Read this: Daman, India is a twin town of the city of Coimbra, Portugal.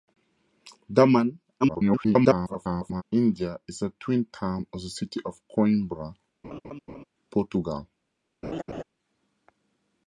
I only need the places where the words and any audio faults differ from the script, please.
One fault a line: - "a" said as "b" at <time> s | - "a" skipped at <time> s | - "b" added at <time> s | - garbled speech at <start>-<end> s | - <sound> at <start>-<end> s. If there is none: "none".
- garbled speech at 1.6-3.0 s
- laugh at 6.4-7.0 s
- laugh at 8.4-8.8 s